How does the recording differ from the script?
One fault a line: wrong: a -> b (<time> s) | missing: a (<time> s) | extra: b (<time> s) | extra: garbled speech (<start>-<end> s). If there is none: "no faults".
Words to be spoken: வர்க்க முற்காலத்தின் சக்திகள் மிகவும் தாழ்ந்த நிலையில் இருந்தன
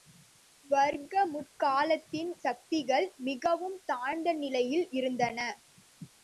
no faults